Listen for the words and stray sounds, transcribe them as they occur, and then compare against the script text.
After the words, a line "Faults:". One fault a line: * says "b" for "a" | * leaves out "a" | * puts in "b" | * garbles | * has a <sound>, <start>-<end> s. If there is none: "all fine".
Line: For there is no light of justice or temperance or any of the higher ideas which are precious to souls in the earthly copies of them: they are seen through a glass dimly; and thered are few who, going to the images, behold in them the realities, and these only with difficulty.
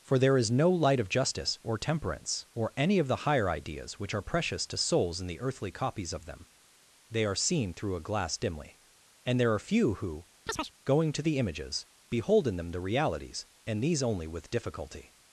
For there is no light of justice or temperance or any of the higher ideas which are precious to souls in the earthly copies of them: they are seen through a glass dimly; and there are few who, going to the images, behold in them the realities, and these only with difficulty.
Faults:
* says "there" for "thered"
* has a chirp, 10.5-10.7 s